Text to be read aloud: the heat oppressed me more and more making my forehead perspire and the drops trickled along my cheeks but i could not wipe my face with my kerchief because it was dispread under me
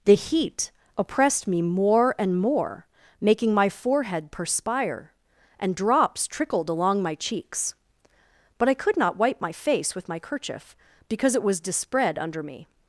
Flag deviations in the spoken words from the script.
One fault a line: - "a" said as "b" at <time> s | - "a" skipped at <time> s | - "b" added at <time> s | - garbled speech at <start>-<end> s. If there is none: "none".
- "the" skipped at 5.8 s